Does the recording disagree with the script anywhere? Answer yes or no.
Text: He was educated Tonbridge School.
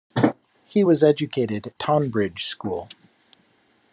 no